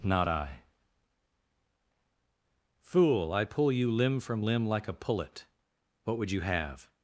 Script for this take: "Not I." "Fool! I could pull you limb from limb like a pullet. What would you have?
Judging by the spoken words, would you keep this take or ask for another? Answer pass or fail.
fail